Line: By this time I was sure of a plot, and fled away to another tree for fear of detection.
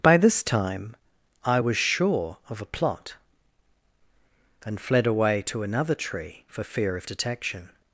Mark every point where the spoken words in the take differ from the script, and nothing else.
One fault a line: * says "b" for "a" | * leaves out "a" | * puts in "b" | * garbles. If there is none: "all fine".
all fine